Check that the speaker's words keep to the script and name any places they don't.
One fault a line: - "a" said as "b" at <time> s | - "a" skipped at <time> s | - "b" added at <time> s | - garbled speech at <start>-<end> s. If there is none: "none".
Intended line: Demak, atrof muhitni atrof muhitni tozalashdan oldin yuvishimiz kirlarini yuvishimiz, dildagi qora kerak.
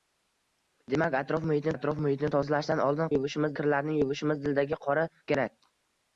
none